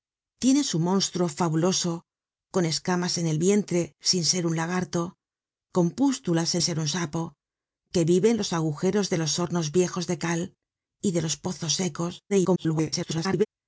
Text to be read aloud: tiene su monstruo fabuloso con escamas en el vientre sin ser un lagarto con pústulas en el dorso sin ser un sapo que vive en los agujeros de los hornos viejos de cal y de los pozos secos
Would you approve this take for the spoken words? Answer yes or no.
no